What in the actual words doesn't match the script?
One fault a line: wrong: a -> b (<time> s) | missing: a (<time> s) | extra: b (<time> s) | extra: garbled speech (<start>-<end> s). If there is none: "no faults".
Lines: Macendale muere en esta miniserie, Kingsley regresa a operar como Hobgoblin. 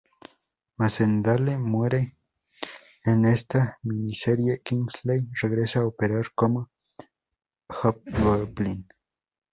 no faults